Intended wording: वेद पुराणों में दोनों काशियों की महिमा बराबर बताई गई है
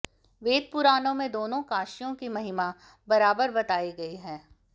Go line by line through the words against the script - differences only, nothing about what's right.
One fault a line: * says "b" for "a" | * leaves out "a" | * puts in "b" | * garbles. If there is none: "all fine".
all fine